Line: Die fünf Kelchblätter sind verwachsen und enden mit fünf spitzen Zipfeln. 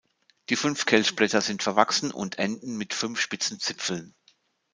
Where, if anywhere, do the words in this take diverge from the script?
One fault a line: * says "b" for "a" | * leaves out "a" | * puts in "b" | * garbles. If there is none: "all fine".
all fine